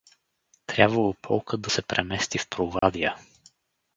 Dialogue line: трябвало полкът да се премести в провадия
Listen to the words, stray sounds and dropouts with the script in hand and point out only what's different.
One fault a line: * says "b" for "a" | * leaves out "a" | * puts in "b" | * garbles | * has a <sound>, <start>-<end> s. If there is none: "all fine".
* has a dropout, 2.8-2.8 s